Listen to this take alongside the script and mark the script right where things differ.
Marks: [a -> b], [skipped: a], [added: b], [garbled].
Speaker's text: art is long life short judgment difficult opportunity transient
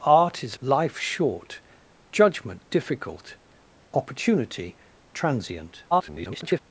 art is [skipped: long] life short judgment difficult opportunity transient [garbled]